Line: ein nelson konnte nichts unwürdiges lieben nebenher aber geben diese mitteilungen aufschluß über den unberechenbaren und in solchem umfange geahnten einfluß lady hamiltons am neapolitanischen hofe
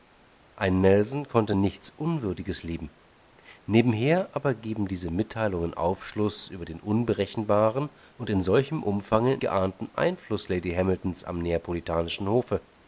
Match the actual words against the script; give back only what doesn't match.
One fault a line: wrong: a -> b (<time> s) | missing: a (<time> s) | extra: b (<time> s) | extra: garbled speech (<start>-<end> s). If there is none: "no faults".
no faults